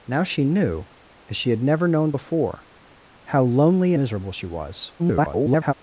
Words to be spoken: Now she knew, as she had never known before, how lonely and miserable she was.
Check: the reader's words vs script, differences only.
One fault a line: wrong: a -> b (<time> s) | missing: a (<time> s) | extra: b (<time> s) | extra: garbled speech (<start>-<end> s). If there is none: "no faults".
missing: and (3.9 s)
extra: garbled speech (5.0-5.7 s)